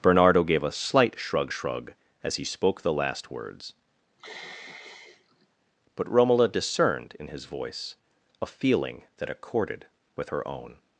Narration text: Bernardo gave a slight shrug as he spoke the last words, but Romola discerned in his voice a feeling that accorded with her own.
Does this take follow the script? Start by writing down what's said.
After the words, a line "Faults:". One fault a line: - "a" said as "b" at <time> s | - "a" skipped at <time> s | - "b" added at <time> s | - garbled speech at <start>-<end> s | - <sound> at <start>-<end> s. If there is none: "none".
Bernardo gave a slight shrug shrug as he spoke the last words, but Romola discerned in his voice a feeling that accorded with her own.
Faults:
- "shrug" added at 1.5 s
- sigh at 4.2-5.5 s